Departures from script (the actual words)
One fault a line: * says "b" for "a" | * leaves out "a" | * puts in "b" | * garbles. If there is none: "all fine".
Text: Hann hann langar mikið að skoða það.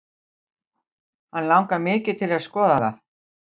* leaves out "hann"
* puts in "til"